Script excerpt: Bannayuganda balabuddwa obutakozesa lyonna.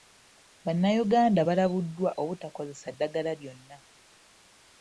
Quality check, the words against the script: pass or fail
fail